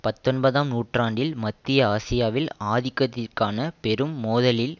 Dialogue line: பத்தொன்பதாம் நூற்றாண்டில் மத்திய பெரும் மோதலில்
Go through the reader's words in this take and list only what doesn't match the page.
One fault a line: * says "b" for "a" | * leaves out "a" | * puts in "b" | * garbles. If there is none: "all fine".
* puts in "ஆசியாவில் ஆதிக்கத்திற்கான"